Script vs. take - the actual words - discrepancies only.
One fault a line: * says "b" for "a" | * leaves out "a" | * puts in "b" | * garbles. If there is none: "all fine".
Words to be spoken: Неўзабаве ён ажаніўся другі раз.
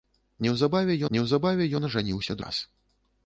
* puts in "неўзабаве"
* leaves out "другі"